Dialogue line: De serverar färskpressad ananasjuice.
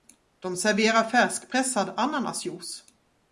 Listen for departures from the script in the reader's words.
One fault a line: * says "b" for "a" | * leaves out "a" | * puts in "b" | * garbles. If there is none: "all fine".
all fine